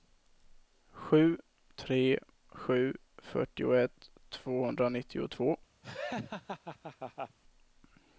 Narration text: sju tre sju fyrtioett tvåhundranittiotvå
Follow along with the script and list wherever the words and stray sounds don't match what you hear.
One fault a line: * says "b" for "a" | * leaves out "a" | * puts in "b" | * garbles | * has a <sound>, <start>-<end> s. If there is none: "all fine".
* has a laugh, 5.8-7.4 s